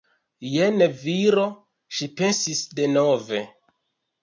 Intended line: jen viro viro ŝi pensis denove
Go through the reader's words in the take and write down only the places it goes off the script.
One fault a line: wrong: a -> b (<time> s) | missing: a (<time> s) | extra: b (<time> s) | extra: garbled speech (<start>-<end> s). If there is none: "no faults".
missing: viro (1.4 s)